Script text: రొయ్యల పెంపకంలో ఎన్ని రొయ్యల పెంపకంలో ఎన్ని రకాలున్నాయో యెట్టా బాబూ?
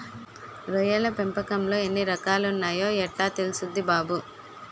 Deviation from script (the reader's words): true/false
true